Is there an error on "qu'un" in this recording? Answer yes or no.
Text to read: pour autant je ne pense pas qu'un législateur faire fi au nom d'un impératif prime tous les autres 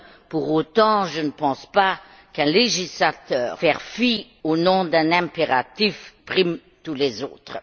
no